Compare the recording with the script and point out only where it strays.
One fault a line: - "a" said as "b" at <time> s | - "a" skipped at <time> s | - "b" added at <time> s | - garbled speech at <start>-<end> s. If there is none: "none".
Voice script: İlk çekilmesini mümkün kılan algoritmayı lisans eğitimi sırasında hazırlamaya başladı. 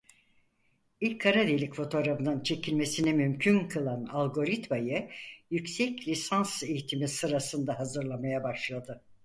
- "kara delik fotoğrafının" added at 1.2 s
- "yüksek" added at 5.5 s